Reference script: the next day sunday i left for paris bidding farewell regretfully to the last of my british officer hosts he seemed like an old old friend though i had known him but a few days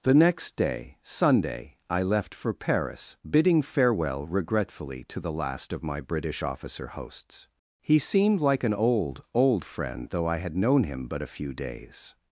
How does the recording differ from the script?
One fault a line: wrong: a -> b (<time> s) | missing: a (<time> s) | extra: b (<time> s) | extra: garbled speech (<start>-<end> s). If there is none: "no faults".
no faults